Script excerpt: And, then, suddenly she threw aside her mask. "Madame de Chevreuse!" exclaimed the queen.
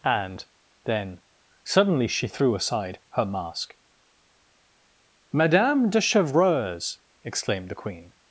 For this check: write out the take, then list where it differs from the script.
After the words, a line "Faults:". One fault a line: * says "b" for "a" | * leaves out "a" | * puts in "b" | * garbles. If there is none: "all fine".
And, then, suddenly she threw aside her mask. "Madame de Chevreuse!" exclaimed the queen.
Faults:
all fine